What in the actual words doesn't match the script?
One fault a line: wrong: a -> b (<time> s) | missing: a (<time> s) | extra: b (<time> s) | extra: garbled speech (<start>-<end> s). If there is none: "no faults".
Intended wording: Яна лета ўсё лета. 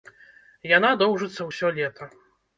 wrong: лета -> доўжыцца (1.0 s)